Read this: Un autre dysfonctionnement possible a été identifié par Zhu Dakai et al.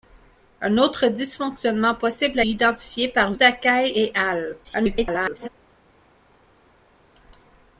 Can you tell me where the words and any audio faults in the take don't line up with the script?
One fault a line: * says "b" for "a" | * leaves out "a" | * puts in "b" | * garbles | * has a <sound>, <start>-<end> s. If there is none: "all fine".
* leaves out "été"
* leaves out "Zhu"
* garbles